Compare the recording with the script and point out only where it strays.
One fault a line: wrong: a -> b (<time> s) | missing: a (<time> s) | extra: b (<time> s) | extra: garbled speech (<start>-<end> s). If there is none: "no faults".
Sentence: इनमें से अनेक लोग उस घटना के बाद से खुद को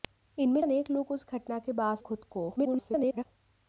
missing: से (0.6 s)
missing: से (2.0 s)
extra: garbled speech (2.6-3.3 s)